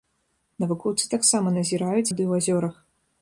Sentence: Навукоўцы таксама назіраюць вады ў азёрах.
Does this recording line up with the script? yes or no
yes